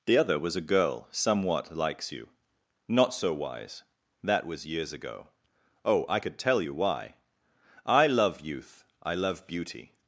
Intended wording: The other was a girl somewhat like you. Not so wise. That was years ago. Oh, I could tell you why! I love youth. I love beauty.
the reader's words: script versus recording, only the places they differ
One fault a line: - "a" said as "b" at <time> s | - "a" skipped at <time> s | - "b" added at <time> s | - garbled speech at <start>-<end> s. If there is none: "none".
- "like" said as "likes" at 1.8 s